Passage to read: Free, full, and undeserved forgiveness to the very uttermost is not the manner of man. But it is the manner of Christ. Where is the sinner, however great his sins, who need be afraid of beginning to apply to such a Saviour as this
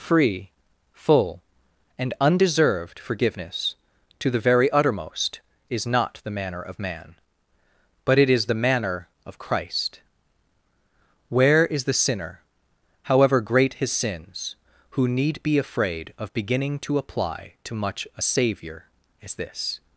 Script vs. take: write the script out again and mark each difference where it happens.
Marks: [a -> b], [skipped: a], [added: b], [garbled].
Free, full, and undeserved forgiveness to the very uttermost is not the manner of man. But it is the manner of Christ. Where is the sinner, however great his sins, who need be afraid of beginning to apply to [such -> much] a Saviour as this